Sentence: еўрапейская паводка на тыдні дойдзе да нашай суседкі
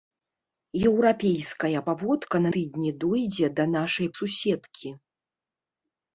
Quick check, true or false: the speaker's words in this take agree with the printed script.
true